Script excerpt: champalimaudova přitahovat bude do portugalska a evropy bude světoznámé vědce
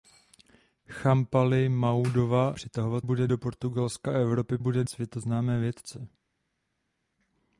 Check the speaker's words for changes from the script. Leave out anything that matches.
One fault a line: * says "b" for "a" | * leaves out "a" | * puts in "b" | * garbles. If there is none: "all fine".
all fine